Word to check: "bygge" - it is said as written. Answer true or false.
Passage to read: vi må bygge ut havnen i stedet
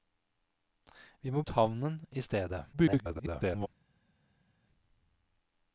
false